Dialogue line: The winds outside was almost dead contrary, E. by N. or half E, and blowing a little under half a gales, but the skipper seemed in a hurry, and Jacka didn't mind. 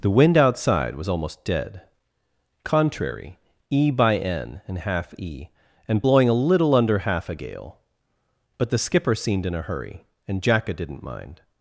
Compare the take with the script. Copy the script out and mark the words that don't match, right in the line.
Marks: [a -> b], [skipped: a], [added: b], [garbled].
The [winds -> wind] outside was almost dead contrary, E. by N. [or -> and] half E, and blowing a little under half a [gales, -> gale] but the skipper seemed in a hurry, and Jacka didn't mind.